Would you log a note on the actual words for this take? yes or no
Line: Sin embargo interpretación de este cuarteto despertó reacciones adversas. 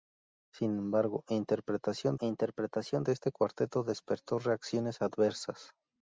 yes